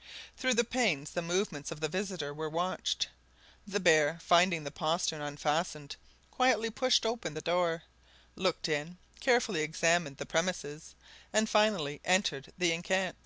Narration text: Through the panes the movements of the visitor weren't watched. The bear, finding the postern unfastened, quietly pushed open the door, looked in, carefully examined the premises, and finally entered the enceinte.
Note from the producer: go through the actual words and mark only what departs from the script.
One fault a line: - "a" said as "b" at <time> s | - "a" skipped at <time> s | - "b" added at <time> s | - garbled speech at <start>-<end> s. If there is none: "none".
- "weren't" said as "were" at 2.3 s